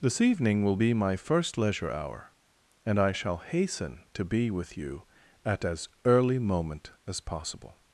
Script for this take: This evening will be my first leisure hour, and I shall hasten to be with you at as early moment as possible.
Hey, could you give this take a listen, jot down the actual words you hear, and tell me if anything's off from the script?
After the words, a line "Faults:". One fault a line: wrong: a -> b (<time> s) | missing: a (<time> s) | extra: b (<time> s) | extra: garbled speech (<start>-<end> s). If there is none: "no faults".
This evening will be my first leisure hour, and I shall hasten to be with you at as early moment as possible.
Faults:
no faults